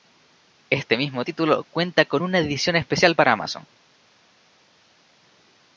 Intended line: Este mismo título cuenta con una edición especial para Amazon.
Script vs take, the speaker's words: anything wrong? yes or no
no